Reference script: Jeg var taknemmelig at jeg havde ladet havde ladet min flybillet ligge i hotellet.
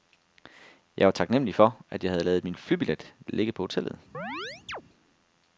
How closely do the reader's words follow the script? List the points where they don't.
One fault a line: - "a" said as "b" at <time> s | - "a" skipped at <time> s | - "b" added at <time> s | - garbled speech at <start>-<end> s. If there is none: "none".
- "for" added at 1.5 s
- "havde ladet" skipped at 2.4 s
- "i" said as "på" at 3.5 s